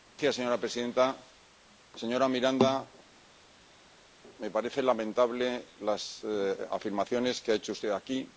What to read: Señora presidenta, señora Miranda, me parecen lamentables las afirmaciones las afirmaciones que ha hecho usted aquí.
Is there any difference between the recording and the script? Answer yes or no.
yes